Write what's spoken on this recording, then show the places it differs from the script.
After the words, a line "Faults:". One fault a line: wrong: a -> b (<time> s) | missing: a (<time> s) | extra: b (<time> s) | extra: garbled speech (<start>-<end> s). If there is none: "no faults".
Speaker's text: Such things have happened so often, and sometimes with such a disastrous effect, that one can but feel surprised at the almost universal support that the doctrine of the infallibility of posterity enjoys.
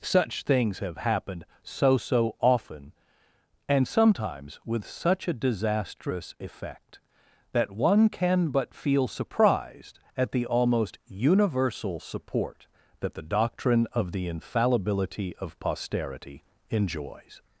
Such things have happened so so often, and sometimes with such a disastrous effect, that one can but feel surprised at the almost universal support that the doctrine of the infallibility of posterity enjoys.
Faults:
extra: so (2.0 s)